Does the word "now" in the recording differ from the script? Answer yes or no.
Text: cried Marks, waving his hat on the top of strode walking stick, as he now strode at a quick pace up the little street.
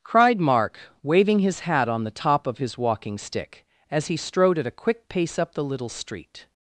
yes